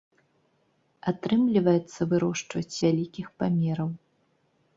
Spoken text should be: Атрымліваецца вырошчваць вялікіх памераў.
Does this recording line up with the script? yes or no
yes